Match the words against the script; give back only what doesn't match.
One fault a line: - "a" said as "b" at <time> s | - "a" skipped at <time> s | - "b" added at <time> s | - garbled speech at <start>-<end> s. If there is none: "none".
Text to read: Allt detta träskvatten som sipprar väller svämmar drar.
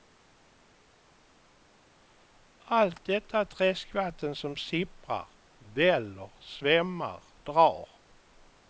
none